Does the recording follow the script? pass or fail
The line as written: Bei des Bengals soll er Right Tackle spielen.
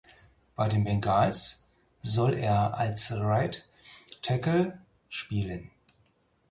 fail